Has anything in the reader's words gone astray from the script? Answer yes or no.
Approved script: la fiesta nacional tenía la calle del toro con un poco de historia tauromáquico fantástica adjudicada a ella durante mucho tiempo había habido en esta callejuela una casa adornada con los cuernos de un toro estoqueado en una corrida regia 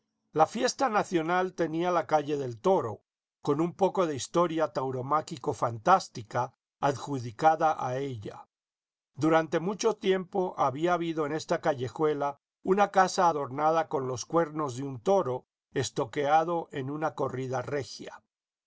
no